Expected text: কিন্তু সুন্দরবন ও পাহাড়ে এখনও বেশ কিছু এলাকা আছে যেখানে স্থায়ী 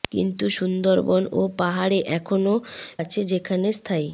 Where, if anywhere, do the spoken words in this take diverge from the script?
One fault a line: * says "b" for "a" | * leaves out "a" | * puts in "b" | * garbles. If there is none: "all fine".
* leaves out "বেশ কিছু এলাকা"